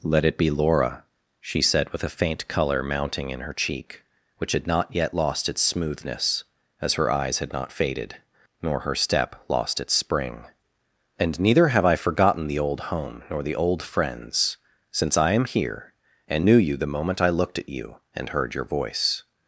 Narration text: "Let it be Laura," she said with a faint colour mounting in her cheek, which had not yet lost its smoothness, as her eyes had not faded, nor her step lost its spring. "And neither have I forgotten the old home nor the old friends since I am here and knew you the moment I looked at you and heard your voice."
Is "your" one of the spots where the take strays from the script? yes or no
no